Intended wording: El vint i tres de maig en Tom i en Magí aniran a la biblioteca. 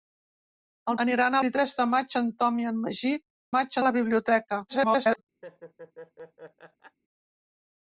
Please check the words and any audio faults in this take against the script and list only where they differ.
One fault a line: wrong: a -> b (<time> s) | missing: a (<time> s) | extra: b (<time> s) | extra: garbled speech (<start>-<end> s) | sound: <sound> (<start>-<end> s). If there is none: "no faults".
wrong: vint -> aniran (1.1 s)
wrong: aniran -> maig (3.5 s)
extra: garbled speech (4.7-5.2 s)
sound: laugh (5.4-7.0 s)